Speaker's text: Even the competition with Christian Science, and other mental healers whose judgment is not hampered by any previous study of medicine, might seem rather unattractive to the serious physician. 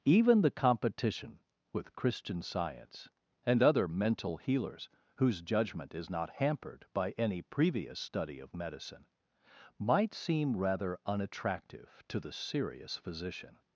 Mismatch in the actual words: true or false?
false